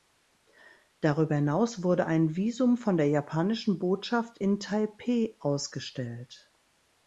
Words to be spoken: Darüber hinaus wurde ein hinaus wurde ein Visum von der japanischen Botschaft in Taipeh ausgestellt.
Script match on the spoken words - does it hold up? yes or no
no